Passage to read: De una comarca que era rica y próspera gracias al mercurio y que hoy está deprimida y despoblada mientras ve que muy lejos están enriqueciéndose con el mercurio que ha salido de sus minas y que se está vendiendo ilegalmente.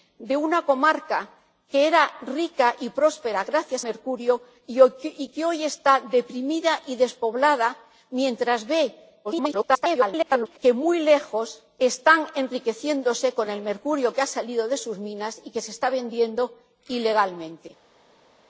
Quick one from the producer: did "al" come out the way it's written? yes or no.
no